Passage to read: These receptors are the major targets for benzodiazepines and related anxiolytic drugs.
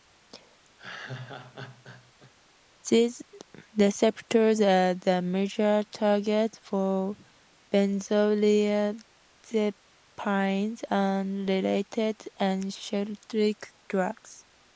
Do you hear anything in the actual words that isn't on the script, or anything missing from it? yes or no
no